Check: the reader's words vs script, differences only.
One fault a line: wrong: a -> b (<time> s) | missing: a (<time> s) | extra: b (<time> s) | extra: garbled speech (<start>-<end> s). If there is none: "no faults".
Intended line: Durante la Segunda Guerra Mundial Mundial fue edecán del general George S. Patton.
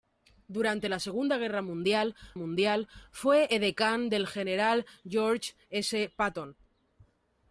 no faults